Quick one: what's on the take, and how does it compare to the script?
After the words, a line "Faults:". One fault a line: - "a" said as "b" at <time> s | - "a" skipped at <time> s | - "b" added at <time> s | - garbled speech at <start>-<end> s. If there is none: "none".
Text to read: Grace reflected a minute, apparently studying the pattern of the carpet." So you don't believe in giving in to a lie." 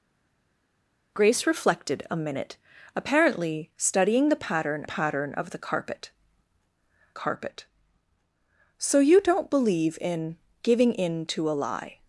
Grace reflected a minute, apparently studying the pattern pattern of the carpet carpet." So you don't believe in giving in to a lie."
Faults:
- "pattern" added at 4.8 s
- "carpet" added at 7.1 s